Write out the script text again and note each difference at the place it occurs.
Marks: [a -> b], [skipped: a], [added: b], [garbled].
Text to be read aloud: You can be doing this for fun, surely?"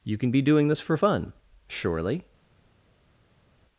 You can be doing this for fun, surely?"